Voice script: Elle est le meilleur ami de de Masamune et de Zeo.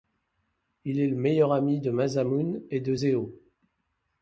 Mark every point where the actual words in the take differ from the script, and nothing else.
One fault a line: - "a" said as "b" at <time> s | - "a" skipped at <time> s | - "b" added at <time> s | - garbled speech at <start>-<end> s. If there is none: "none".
- "Elle" said as "Il" at 0.8 s
- "de" skipped at 1.9 s